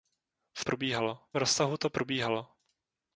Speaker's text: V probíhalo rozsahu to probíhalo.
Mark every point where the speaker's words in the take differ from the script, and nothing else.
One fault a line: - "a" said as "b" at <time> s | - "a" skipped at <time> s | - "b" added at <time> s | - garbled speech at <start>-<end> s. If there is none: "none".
none